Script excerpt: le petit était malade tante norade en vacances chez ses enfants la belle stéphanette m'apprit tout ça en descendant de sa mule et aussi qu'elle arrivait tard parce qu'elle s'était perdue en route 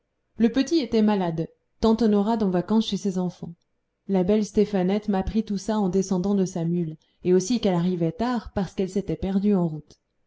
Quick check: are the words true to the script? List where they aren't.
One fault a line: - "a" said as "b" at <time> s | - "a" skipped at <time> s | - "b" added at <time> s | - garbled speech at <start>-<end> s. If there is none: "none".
none